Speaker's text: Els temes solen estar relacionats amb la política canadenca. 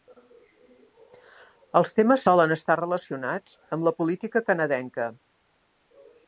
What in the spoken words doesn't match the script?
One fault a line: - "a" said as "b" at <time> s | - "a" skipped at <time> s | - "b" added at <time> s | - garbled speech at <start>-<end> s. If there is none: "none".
none